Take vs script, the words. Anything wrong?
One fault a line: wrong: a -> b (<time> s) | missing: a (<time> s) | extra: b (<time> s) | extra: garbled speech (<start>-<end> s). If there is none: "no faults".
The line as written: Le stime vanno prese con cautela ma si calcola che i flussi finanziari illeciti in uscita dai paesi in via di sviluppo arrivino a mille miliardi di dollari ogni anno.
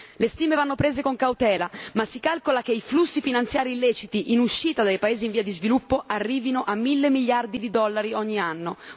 no faults